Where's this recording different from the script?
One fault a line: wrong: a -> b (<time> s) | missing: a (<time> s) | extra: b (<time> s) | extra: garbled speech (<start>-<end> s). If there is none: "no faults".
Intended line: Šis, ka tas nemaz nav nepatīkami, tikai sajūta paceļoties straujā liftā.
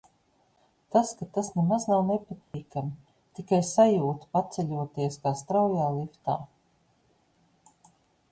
wrong: Šis -> Tas (0.9 s)
extra: kā (5.2 s)